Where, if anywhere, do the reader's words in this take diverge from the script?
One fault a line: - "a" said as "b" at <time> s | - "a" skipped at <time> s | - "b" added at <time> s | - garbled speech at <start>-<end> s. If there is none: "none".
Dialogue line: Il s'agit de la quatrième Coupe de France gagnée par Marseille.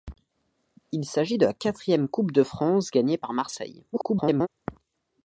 - garbled speech at 3.9-4.5 s